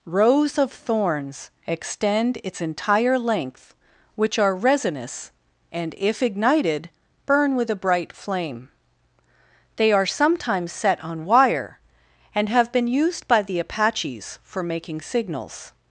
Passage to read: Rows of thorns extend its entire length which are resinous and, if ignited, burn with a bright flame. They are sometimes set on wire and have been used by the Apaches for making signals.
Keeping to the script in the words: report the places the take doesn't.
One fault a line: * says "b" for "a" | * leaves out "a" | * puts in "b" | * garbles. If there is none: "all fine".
all fine